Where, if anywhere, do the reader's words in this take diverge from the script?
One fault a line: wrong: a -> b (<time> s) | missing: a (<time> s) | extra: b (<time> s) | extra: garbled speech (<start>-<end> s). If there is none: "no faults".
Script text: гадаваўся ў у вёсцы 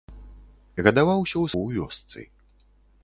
no faults